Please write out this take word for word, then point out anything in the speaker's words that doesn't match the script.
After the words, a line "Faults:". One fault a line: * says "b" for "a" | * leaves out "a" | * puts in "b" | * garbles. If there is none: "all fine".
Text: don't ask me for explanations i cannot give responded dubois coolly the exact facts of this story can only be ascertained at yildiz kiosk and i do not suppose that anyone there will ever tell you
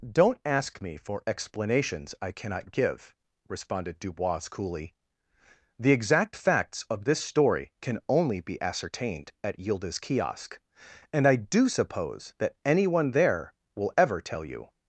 don't ask me for explanations i cannot give responded dubois coolly the exact facts of this story can only be ascertained at yildiz kiosk and i do suppose that anyone there will ever tell you
Faults:
* leaves out "not"